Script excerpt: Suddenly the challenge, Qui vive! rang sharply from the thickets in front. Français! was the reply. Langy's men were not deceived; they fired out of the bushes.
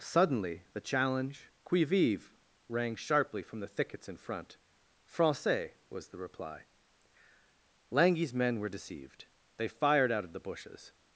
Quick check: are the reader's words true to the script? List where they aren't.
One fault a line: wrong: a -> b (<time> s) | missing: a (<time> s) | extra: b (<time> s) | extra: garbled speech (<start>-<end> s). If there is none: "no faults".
missing: not (8.7 s)